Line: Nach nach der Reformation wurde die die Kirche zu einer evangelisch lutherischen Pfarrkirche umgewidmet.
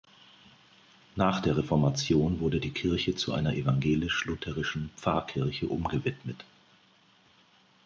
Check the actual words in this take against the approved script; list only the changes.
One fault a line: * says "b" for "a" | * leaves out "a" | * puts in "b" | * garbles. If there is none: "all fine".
* leaves out "nach"
* leaves out "die"